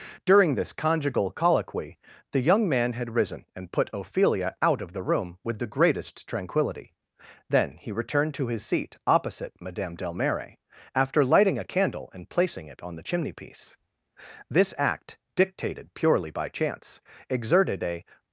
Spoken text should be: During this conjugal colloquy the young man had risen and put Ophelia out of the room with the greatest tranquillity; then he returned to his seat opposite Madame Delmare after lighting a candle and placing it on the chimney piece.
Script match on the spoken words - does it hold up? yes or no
no